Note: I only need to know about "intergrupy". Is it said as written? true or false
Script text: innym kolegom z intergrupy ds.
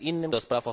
false